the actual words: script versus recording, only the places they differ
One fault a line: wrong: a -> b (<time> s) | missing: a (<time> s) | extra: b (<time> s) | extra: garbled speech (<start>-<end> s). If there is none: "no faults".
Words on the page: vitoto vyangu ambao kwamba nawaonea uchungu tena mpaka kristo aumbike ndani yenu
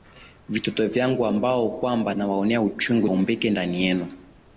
missing: tena mpaka kristo (3.1 s)